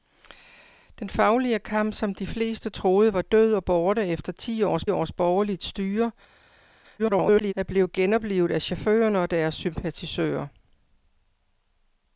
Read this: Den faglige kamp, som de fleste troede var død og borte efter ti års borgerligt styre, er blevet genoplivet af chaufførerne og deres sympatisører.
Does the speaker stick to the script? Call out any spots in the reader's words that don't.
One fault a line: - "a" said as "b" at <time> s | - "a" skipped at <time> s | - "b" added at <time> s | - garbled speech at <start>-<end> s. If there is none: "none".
- "års" added at 4.9 s
- garbled speech at 7.0-7.5 s